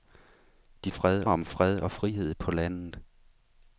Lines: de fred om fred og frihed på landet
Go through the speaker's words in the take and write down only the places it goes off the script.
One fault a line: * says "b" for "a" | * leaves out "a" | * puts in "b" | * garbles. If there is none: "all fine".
all fine